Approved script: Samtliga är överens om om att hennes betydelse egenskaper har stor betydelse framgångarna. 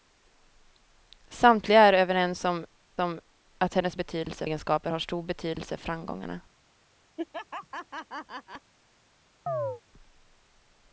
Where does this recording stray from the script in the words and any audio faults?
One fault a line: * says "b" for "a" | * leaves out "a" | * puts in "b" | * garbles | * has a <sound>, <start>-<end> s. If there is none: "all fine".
* has a laugh, 7.2-8.7 s
* has a chirp, 9.5-9.8 s